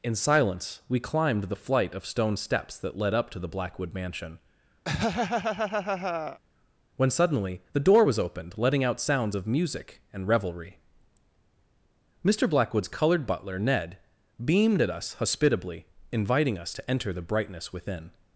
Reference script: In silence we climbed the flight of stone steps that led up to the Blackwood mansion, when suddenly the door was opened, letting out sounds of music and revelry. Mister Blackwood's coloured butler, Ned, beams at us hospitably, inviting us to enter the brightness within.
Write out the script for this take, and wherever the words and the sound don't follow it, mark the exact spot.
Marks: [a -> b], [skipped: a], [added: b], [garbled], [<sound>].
In silence we climbed the flight of stone steps that led up to the Blackwood mansion, [laugh] when suddenly the door was opened, letting out sounds of music and revelry. Mister Blackwood's coloured butler, Ned, [beams -> beamed] at us hospitably, inviting us to enter the brightness within.